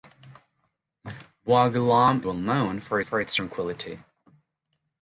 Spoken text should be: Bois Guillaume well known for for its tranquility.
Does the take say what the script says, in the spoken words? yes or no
yes